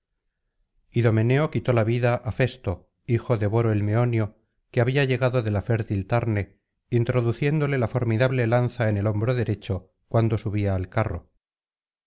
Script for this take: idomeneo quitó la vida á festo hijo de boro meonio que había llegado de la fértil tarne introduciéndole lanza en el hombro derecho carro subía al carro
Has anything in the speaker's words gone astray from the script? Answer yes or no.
yes